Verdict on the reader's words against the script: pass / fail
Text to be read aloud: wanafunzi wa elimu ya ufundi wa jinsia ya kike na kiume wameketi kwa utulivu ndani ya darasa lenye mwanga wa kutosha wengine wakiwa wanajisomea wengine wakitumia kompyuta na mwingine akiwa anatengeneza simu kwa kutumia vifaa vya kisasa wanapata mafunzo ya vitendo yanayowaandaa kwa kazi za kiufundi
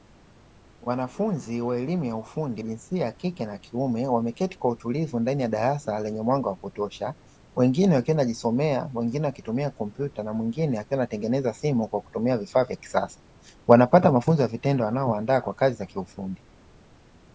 fail